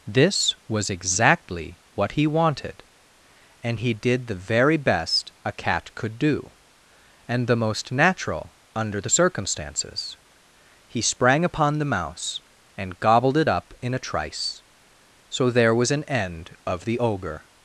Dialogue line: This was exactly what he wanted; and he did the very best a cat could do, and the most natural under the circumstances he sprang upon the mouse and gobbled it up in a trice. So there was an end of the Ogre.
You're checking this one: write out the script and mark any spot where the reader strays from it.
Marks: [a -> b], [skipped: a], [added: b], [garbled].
This was exactly what he wanted; and he did the very best a cat could do, and the most natural under the circumstances he sprang upon the mouse and gobbled it up in a trice. So there was an end of the Ogre.